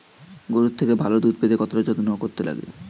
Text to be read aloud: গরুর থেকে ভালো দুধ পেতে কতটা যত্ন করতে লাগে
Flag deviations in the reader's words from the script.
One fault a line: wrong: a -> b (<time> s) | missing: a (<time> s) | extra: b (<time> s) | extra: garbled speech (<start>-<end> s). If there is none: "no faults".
no faults